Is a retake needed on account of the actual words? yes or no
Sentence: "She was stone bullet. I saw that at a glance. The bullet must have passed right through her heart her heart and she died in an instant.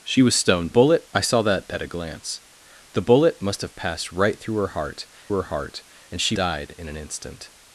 no